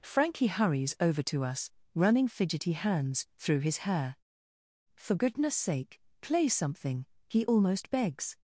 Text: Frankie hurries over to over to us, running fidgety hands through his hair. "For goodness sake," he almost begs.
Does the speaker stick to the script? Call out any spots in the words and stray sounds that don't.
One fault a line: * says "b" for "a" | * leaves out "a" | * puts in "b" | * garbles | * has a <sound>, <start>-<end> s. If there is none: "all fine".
* leaves out "over to"
* puts in "play something"